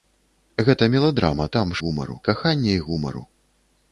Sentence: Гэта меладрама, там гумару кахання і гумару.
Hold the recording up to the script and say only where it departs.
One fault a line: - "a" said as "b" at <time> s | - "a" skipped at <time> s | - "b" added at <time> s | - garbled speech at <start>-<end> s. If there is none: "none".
none